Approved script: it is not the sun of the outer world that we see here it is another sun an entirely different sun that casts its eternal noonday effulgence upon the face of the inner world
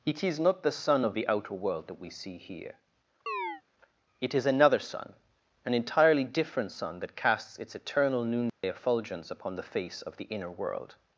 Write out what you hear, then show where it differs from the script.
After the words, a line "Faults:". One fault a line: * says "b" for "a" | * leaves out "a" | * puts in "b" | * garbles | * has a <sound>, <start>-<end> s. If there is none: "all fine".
it is not the sun of the outer world that we see here it is another sun an entirely different sun that casts its eternal noonday effulgence upon the face of the inner world
Faults:
* has a chirp, 3.3-3.6 s
* has a dropout, 8.5-8.6 s